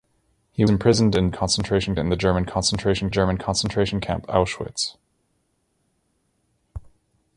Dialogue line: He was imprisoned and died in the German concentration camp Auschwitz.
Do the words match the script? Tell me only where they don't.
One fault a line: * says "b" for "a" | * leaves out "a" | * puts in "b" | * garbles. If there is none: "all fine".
* leaves out "was"
* says "concentration" for "died"
* puts in "German concentration"